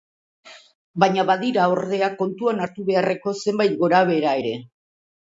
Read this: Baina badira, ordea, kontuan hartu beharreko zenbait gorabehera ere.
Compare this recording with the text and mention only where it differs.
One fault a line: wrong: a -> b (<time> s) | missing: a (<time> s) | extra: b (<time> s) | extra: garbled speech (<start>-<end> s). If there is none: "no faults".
no faults